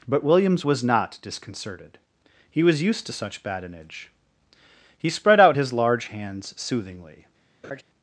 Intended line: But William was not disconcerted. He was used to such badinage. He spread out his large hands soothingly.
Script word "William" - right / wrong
wrong